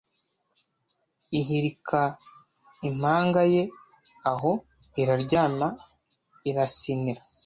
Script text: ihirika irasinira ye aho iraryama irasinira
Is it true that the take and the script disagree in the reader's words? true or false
true